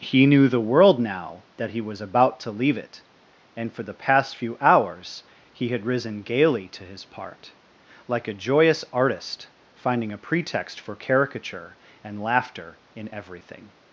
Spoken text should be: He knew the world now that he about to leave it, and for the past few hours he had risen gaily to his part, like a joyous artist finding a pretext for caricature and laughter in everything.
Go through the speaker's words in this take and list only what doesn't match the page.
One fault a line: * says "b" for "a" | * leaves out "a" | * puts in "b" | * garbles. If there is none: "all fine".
* puts in "was"